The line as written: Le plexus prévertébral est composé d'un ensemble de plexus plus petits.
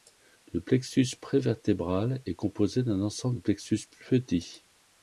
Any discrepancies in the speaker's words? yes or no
no